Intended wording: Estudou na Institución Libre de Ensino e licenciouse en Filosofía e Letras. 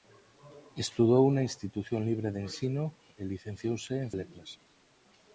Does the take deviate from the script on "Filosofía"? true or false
true